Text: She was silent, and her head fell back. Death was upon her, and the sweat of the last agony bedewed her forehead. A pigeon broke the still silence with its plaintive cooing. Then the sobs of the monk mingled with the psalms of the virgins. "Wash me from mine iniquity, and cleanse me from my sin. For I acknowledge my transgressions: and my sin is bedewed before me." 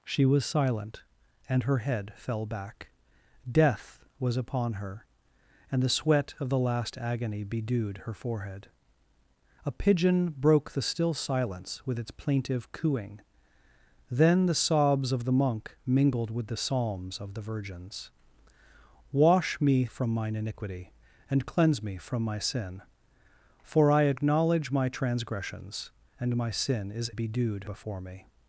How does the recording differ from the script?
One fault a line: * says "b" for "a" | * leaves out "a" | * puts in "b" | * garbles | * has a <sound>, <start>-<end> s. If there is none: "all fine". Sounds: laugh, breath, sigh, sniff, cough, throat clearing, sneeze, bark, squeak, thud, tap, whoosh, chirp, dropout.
all fine